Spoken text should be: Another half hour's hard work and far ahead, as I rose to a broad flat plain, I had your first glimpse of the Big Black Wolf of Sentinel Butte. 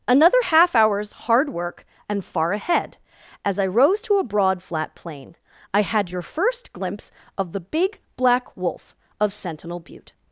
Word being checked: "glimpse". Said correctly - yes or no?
yes